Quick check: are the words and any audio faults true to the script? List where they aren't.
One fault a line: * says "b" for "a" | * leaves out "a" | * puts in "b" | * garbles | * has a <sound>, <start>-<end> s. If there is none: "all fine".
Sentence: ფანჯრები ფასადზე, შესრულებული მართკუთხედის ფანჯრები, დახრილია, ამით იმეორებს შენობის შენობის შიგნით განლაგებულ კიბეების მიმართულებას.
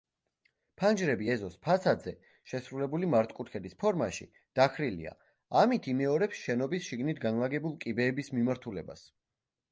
* puts in "ეზოს"
* says "ფორმაში" for "ფანჯრები"
* leaves out "შენობის"